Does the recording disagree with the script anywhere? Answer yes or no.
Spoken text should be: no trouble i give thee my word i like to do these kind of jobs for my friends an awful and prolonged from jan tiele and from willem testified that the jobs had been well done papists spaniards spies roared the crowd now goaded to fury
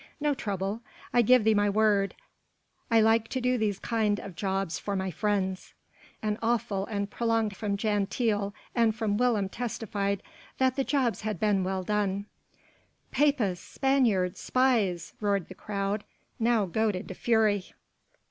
no